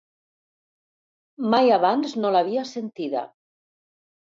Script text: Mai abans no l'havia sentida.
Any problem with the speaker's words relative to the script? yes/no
no